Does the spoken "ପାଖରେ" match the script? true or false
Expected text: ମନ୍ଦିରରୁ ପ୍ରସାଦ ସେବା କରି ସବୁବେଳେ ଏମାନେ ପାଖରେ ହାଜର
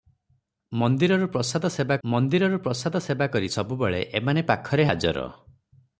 true